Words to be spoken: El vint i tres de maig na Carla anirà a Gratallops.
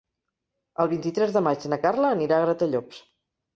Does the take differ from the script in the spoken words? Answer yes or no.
no